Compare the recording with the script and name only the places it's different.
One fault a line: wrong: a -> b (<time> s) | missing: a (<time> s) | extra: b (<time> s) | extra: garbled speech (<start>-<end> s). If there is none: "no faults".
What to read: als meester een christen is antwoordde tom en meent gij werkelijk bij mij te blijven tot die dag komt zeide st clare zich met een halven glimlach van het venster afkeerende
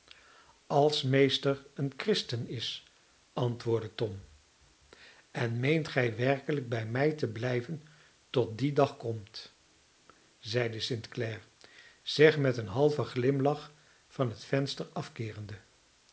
no faults